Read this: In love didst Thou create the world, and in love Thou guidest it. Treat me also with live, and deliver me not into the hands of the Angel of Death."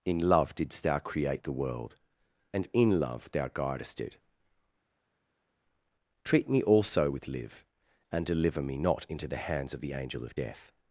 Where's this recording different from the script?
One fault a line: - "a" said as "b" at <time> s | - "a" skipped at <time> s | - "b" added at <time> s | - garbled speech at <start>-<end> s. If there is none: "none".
none